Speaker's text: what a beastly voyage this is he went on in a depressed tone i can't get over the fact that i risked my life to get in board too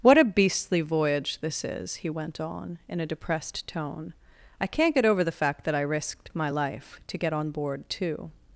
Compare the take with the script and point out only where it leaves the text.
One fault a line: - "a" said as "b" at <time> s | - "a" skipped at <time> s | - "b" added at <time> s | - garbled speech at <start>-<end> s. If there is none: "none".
- "in" said as "on" at 7.3 s